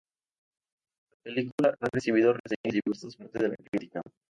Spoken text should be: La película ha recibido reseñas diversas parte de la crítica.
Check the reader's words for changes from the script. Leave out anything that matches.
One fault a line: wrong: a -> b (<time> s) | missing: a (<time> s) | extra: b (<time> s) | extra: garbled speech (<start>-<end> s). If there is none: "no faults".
no faults